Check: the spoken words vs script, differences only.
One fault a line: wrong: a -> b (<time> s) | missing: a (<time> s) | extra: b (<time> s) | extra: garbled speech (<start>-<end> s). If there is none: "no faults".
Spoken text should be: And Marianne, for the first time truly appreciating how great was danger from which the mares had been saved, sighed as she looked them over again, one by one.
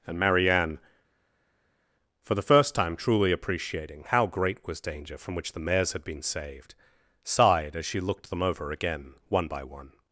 no faults